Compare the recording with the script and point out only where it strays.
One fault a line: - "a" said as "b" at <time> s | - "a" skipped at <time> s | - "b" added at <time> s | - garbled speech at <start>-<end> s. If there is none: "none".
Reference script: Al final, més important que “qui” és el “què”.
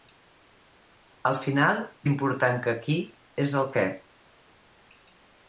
- "més" skipped at 1.8 s